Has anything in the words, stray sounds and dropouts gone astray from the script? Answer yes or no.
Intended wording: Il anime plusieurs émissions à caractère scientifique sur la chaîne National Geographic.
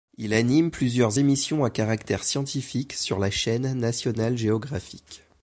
no